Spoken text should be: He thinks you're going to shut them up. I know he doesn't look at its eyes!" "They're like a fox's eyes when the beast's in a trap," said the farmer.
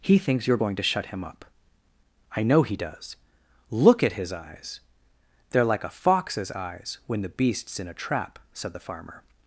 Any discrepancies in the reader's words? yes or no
yes